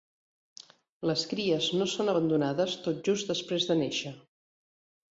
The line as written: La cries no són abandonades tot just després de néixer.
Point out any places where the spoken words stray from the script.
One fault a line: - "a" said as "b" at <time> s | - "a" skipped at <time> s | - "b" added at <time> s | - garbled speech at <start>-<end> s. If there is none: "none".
- "La" said as "Les" at 1.1 s